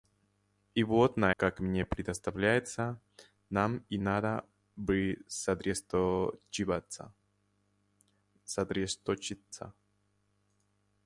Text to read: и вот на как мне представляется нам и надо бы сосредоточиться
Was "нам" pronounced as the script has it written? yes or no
yes